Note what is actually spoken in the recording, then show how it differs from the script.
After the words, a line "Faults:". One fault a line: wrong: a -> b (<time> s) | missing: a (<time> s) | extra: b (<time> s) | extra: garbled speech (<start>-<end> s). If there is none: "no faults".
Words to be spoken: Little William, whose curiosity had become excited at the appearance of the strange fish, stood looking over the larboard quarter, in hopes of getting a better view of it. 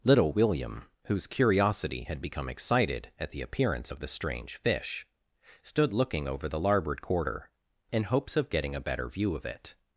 Little William, whose curiosity had become excited at the appearance of the strange fish, stood looking over the larboard quarter, in hopes of getting a better view of it.
Faults:
no faults